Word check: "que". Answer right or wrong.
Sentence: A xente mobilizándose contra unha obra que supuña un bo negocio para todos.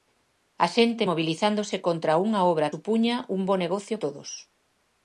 wrong